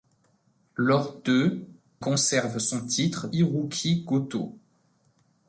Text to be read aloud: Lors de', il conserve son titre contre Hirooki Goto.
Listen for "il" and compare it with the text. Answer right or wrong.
wrong